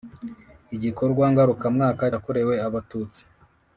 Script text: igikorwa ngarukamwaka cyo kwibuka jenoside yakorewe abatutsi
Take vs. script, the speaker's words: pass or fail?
fail